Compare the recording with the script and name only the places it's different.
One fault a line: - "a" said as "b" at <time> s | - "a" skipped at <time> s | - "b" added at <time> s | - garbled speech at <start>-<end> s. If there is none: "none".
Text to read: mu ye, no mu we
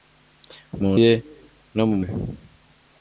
none